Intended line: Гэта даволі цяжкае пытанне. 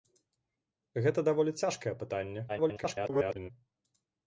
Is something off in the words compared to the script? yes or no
yes